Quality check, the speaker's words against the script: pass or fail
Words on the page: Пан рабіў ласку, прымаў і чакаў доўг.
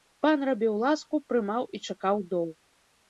pass